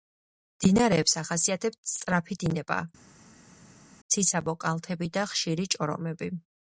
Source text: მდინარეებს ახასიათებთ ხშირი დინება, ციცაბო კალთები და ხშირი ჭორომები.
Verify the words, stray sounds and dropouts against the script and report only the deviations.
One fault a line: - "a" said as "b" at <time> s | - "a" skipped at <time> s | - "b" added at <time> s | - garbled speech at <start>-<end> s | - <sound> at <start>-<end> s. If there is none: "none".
- "ხშირი" said as "სწრაფი" at 1.9 s